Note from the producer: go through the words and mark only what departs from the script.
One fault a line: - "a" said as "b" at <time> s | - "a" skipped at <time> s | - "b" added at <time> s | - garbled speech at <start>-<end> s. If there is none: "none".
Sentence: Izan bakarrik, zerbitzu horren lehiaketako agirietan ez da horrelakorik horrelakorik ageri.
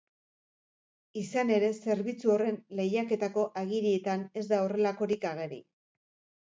- "bakarrik" said as "ere" at 1.6 s
- "horrelakorik" skipped at 5.3 s